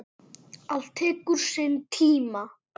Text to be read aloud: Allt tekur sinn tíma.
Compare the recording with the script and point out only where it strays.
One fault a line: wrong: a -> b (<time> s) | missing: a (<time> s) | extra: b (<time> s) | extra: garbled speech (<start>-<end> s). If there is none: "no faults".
no faults